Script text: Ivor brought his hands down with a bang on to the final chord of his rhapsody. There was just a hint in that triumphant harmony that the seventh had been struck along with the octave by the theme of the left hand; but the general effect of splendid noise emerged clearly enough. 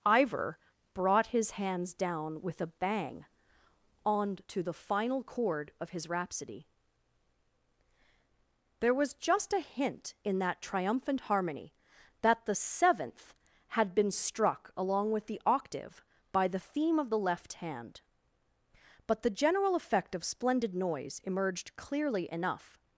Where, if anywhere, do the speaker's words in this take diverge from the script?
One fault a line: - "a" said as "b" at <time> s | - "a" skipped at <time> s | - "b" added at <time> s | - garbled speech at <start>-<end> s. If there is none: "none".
none